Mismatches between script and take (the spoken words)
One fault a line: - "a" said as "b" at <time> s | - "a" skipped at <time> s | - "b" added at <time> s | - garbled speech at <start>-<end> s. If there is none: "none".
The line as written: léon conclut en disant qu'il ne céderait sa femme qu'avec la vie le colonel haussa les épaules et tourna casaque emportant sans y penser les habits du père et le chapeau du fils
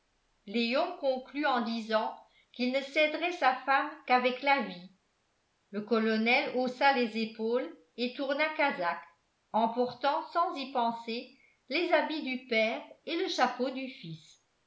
none